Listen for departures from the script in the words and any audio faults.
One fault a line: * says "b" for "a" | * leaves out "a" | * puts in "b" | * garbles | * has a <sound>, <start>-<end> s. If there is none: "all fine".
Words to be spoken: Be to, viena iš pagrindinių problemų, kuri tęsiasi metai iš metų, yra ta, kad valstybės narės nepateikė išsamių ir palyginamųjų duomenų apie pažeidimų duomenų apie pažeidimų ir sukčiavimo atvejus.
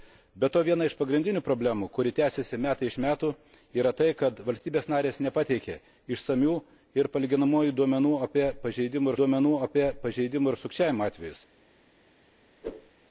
* has a whoosh, 12.6-12.9 s